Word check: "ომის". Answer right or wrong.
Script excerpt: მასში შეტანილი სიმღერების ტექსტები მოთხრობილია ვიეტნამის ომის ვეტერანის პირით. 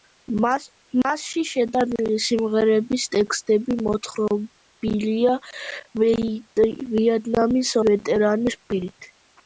wrong